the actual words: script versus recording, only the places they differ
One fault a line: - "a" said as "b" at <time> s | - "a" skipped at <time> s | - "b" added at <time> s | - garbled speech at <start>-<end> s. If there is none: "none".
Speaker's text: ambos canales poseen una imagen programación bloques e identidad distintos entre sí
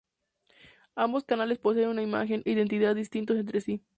- "programación bloques" skipped at 2.4 s